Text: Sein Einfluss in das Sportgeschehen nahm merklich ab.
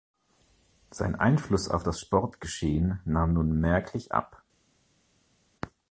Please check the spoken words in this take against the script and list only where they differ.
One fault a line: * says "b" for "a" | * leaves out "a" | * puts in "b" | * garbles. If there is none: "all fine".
* says "auf" for "in"
* puts in "nun"